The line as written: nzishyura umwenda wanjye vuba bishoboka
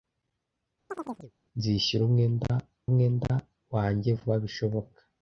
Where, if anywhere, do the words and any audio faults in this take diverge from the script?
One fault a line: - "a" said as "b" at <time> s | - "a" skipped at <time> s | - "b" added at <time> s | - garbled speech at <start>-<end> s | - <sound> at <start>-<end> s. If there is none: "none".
- chirp at 0.9-1.3 s
- "umwenda" added at 2.9 s